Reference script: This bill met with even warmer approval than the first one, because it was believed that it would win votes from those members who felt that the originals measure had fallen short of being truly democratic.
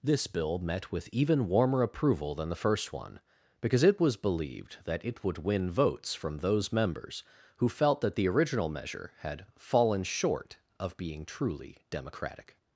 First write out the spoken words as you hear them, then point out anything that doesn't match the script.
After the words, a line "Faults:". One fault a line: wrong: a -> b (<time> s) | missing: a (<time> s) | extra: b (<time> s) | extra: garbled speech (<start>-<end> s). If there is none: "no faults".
This bill met with even warmer approval than the first one, because it was believed that it would win votes from those members who felt that the original measure had fallen short of being truly democratic.
Faults:
wrong: originals -> original (8.3 s)